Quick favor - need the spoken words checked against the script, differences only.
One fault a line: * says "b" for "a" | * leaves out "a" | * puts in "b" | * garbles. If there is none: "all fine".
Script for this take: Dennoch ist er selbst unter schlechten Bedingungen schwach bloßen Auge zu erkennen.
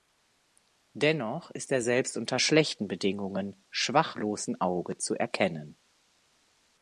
all fine